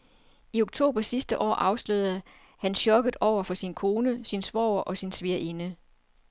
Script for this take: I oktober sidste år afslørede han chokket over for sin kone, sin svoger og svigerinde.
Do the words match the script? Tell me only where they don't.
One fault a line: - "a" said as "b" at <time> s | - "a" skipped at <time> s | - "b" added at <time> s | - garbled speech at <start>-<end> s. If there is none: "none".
- "sin" added at 5.0 s